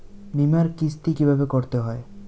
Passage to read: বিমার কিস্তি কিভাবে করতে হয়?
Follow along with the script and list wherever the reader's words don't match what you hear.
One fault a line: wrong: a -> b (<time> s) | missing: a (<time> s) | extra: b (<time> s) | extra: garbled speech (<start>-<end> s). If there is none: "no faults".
no faults